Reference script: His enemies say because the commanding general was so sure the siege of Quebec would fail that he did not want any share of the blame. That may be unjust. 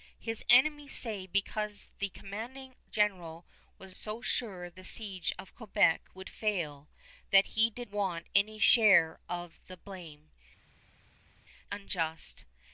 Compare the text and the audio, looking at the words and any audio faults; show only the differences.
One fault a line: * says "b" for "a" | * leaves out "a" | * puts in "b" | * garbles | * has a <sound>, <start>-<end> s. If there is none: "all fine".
* leaves out "not"
* leaves out "That may be"